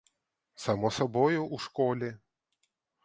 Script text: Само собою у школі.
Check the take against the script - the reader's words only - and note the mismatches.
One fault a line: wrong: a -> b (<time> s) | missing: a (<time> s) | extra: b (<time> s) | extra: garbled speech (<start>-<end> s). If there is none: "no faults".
no faults